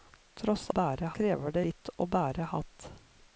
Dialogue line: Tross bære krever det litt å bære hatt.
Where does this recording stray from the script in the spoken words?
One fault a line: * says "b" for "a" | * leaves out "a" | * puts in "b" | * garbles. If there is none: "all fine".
all fine